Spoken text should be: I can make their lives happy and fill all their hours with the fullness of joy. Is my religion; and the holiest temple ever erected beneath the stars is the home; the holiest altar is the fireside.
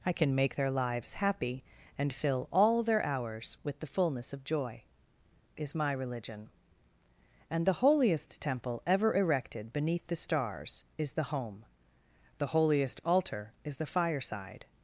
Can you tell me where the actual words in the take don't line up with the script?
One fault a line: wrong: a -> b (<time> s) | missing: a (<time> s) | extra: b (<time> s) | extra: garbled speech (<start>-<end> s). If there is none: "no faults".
no faults